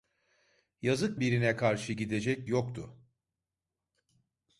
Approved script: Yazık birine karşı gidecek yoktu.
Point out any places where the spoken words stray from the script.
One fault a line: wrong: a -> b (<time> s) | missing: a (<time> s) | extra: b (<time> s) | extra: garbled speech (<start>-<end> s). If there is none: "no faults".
no faults